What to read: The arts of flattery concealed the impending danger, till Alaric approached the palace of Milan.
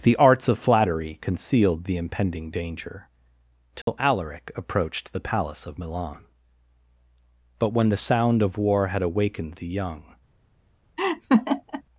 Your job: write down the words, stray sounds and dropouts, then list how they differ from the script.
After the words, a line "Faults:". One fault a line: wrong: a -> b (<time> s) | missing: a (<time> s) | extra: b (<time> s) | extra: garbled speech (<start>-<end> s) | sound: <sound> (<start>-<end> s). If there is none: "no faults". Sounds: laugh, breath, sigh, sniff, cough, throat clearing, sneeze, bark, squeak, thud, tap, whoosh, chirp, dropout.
The arts of flattery concealed the impending danger, till Alaric approached the palace of Milan. But when the sound of war had awakened the young
Faults:
sound: dropout (3.8-3.9 s)
extra: But when the sound of war had awakened the young (7.6 s)
sound: laugh (11.0-11.8 s)